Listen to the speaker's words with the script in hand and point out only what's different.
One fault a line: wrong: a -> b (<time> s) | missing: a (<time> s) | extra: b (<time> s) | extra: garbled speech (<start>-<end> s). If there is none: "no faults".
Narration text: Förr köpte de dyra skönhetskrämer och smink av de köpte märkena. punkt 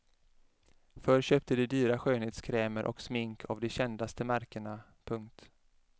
wrong: köpte -> kändaste (3.7 s)